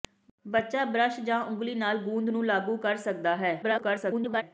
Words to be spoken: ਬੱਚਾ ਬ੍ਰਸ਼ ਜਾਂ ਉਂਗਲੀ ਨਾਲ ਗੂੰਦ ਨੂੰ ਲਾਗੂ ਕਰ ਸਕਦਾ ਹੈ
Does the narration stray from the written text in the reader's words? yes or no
yes